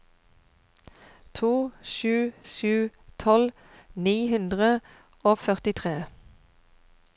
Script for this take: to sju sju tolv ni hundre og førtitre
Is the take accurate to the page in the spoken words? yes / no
yes